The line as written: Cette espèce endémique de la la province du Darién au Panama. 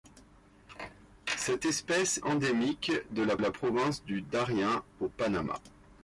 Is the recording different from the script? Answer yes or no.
no